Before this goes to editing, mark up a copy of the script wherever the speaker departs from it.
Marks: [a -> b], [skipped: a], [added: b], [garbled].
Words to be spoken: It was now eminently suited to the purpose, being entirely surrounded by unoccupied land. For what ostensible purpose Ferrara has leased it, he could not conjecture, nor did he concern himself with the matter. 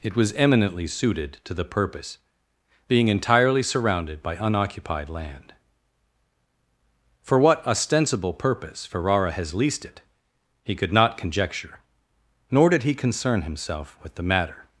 It was [skipped: now] eminently suited to the purpose, being entirely surrounded by unoccupied land. For what ostensible purpose Ferrara has leased it, he could not conjecture, nor did he concern himself with the matter.